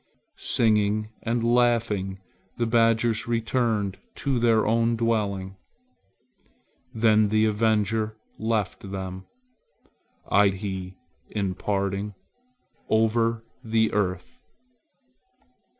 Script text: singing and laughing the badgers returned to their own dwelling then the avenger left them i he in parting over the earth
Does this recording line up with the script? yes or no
yes